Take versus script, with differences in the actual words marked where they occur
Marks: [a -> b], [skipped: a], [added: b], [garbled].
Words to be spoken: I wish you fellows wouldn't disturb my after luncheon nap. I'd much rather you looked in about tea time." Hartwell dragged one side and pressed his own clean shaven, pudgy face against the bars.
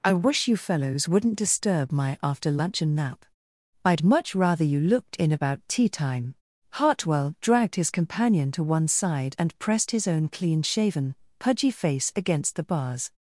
I wish you fellows wouldn't disturb my after luncheon nap. I'd much rather you looked in about tea time." Hartwell dragged [added: his companion to] one side and pressed his own clean shaven, pudgy face against the bars.